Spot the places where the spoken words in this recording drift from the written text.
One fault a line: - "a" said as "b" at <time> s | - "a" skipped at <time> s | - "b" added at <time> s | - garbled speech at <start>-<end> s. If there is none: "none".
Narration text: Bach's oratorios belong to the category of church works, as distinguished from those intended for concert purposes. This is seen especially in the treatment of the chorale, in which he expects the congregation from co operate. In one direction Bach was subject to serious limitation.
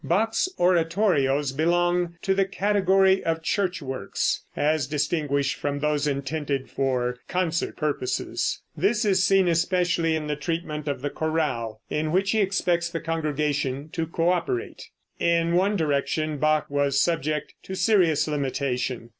- "from" said as "to" at 13.9 s